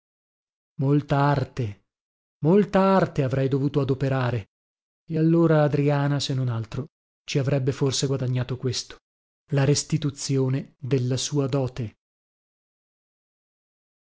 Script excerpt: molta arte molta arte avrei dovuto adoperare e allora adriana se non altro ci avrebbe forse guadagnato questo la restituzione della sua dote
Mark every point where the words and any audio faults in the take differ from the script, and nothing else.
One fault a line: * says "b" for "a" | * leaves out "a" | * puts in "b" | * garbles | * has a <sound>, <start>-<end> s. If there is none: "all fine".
all fine